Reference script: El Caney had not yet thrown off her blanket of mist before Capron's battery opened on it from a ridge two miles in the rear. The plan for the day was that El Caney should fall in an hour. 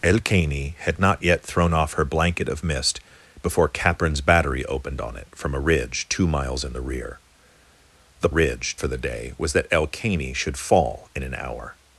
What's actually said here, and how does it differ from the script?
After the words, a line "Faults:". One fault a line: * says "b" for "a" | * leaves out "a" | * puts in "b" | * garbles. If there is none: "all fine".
El Caney had not yet thrown off her blanket of mist before Capron's battery opened on it from a ridge two miles in the rear. The ridge for the day was that El Caney should fall in an hour.
Faults:
* says "ridge" for "plan"